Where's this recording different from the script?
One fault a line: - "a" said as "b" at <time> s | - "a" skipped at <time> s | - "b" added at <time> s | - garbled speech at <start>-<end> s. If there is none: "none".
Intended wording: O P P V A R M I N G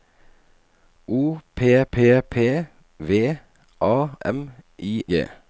- "P" added at 2.2 s
- "R" skipped at 4.1 s
- "N" skipped at 5.0 s